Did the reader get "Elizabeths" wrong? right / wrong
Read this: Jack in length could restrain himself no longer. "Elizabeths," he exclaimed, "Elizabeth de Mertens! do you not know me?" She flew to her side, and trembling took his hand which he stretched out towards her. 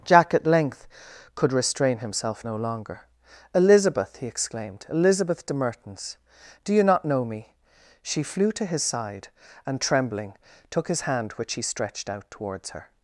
wrong